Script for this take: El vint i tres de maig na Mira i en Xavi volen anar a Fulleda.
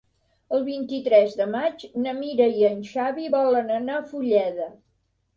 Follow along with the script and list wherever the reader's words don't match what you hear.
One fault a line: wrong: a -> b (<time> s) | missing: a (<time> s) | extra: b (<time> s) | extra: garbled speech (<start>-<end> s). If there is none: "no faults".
no faults